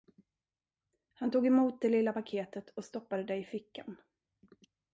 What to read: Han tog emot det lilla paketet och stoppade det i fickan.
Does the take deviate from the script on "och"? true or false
false